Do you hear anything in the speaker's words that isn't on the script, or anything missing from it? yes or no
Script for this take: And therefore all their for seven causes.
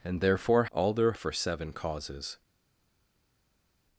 no